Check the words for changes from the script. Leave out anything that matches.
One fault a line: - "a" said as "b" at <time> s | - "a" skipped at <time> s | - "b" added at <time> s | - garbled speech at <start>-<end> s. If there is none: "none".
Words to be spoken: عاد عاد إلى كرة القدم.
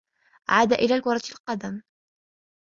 - "عاد" skipped at 0.7 s